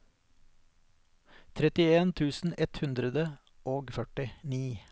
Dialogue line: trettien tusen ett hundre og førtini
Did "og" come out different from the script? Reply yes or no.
no